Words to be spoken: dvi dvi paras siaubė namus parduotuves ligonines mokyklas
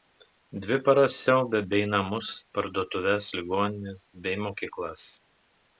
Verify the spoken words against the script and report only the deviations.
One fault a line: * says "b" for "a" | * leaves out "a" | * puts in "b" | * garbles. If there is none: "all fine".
* leaves out "dvi"
* puts in "bei"
* puts in "bei"